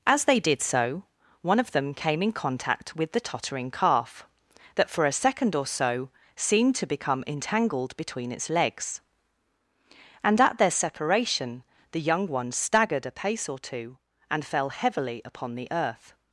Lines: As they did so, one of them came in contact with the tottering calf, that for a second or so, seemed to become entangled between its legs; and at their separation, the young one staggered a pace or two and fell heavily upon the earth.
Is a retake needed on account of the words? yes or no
no